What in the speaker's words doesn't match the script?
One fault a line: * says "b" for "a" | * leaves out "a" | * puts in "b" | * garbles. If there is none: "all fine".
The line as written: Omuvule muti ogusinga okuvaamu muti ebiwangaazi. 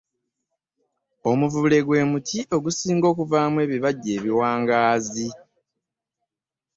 * puts in "gwe"
* says "ebibajje" for "muti"